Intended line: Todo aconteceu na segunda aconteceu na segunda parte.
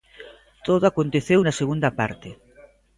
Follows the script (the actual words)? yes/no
no